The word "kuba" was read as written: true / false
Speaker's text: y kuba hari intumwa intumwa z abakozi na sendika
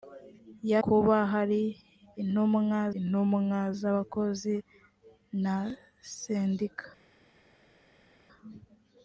true